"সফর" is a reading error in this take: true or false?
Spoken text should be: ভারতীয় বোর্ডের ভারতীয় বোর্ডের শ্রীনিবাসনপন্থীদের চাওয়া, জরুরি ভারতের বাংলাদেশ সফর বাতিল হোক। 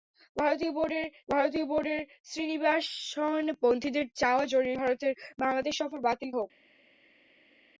false